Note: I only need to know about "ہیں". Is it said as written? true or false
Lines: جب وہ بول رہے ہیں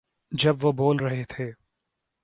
false